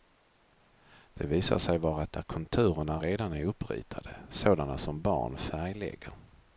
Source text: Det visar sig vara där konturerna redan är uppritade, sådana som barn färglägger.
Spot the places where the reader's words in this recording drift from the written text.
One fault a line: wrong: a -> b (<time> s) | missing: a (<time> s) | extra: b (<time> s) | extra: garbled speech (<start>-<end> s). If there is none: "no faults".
no faults